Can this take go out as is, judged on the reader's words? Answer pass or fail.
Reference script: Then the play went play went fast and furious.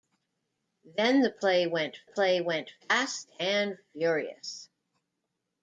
pass